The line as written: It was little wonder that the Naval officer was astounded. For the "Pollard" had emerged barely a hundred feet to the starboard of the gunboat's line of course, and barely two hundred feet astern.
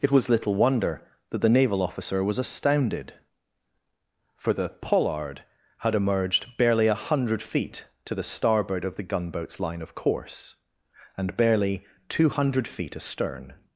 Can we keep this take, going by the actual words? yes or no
yes